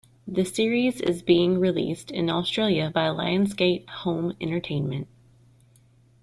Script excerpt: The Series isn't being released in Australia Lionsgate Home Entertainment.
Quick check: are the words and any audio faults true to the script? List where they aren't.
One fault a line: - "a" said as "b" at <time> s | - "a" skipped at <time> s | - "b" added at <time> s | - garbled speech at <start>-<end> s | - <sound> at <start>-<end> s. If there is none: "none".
- "isn't" said as "is" at 1.0 s
- "by" added at 2.9 s